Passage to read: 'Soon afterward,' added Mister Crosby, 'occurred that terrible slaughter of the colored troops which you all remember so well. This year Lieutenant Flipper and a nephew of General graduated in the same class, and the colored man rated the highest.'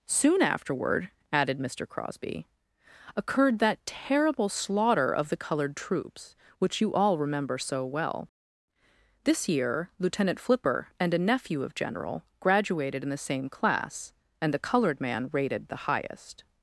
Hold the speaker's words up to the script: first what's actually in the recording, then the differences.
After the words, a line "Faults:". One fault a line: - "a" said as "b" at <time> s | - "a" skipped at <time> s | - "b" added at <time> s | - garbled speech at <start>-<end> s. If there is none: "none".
'Soon afterward,' added Mister Crosby, 'occurred that terrible slaughter of the colored troops which you all remember so well. This year Lieutenant Flipper and a nephew of General graduated in the same class, and the colored man rated the highest.'
Faults:
none